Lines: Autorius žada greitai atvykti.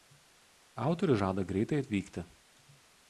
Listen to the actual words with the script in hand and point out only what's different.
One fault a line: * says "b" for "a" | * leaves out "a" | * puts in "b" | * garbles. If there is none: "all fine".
all fine